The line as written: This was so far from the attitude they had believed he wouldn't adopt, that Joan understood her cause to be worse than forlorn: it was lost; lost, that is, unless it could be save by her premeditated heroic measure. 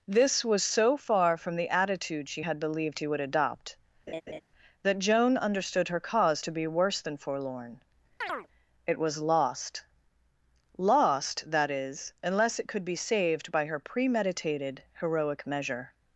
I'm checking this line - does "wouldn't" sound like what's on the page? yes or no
no